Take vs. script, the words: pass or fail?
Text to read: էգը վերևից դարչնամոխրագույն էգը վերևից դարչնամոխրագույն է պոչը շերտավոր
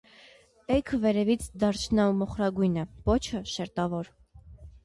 fail